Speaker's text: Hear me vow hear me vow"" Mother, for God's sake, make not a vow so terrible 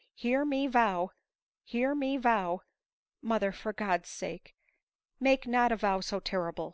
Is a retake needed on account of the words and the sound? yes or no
no